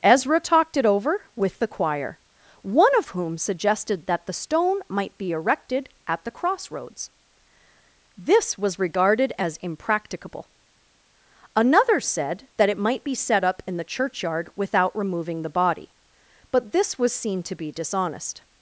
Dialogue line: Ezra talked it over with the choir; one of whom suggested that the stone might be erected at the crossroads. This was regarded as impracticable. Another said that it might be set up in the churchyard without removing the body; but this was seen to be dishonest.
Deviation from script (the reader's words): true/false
false